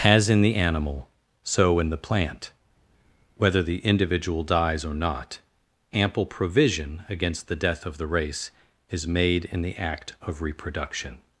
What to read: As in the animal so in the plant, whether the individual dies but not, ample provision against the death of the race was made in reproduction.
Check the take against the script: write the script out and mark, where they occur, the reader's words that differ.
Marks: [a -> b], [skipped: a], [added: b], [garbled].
As in the animal so in the plant, whether the individual dies [but -> or] not, ample provision against the death of the race [was -> is] made in [added: the act of] reproduction.